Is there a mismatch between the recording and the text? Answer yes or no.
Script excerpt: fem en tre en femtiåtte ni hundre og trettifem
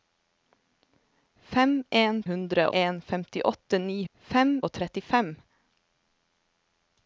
yes